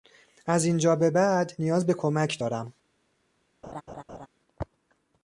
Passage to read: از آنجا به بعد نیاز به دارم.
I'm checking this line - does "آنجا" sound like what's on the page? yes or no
no